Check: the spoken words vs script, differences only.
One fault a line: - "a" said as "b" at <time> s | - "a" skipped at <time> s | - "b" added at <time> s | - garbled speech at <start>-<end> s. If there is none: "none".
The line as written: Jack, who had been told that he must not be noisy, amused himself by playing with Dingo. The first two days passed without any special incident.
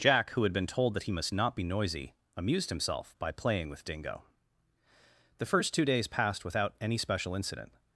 none